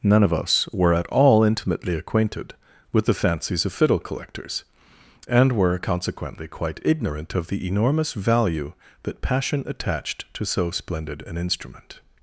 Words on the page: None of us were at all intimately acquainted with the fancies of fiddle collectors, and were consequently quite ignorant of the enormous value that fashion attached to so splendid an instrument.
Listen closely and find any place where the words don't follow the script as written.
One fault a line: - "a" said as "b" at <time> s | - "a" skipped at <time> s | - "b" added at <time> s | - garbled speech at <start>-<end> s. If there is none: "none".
- "fashion" said as "passion" at 9.2 s